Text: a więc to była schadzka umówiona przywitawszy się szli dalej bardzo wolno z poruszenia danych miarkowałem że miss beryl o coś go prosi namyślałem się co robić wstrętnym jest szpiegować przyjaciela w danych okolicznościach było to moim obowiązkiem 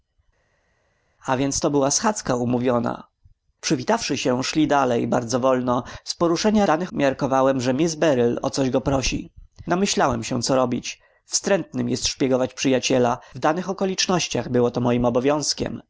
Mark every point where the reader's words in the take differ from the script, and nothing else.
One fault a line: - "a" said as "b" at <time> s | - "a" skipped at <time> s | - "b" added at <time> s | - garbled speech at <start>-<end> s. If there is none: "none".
none